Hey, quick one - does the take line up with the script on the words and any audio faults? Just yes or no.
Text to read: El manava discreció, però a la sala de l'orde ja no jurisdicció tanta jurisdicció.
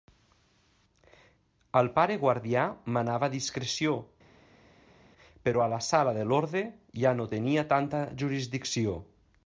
no